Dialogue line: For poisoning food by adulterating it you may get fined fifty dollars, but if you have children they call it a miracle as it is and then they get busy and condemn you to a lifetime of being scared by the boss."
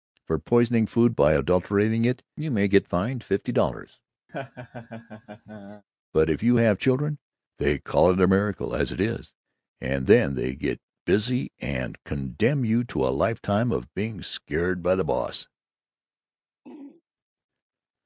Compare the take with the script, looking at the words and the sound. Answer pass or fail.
fail